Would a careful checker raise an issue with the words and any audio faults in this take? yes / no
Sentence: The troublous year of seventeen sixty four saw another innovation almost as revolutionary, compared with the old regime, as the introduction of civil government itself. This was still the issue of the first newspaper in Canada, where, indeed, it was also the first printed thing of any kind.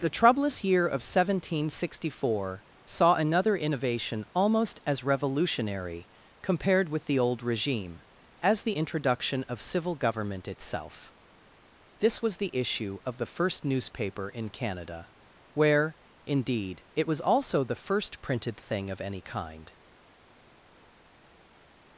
yes